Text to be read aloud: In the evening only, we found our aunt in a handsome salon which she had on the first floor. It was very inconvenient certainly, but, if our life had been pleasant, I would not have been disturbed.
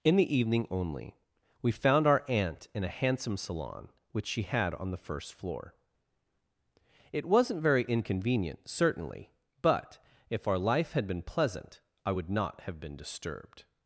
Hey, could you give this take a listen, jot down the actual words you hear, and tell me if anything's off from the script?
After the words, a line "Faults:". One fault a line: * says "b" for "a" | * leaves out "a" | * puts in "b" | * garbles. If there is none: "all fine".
In the evening only, we found our aunt in a handsome salon which she had on the first floor. It wasn't very inconvenient certainly, but, if our life had been pleasant, I would not have been disturbed.
Faults:
* says "wasn't" for "was"